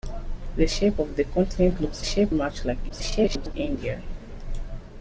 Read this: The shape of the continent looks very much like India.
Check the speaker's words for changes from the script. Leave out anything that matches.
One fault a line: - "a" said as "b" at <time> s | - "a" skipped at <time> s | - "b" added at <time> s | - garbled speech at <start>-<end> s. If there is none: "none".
- "very" said as "shape" at 2.0 s
- garbled speech at 2.9-3.5 s